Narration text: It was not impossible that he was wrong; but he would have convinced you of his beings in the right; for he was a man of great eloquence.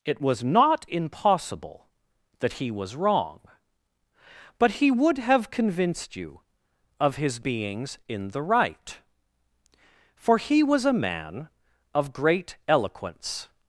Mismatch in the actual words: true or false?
false